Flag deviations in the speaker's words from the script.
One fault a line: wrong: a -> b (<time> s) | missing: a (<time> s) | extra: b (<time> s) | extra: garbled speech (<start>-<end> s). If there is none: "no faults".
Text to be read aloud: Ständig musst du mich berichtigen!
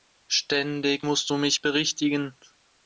no faults